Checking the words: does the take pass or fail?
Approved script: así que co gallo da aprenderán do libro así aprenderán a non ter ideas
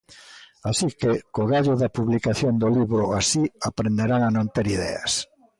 fail